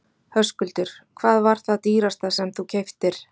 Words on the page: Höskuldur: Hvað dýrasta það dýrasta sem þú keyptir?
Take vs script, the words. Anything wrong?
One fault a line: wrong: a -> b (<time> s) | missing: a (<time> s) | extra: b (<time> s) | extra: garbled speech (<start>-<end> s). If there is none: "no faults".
wrong: dýrasta -> var (1.5 s)